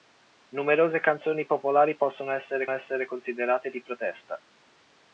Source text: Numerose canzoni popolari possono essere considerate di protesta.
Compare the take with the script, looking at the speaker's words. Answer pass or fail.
fail